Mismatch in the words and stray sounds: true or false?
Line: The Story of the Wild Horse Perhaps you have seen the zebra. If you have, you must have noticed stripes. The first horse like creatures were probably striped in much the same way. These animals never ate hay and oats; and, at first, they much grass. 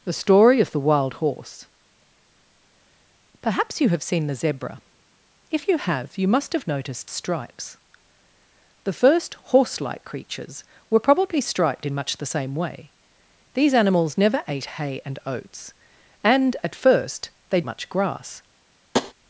true